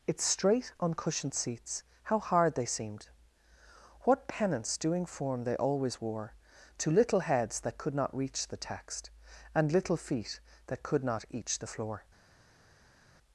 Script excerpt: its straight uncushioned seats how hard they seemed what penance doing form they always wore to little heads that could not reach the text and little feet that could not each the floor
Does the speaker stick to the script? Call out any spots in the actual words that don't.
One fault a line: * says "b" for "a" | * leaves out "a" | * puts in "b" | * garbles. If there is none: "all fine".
all fine